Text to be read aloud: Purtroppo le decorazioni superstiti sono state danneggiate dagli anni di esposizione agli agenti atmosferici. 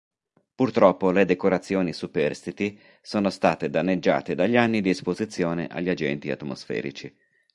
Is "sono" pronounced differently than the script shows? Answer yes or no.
no